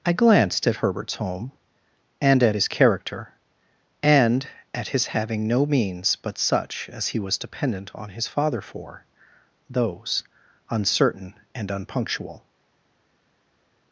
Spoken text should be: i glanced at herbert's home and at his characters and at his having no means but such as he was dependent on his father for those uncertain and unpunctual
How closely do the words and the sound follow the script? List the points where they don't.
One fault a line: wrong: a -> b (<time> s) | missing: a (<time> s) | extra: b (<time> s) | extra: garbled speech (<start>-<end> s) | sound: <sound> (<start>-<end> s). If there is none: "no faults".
wrong: characters -> character (2.7 s)